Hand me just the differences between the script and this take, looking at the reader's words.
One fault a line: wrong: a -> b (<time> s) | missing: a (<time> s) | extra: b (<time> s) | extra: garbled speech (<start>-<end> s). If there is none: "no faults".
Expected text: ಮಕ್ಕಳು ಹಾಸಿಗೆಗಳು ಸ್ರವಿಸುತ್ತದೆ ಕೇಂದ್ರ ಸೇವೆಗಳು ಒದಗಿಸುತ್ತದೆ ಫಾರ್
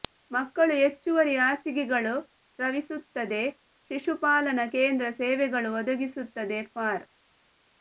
extra: ಹೆಚ್ಚುವರಿ (0.8 s)
extra: ಶಿಶುಪಾಲನಾ (3.9 s)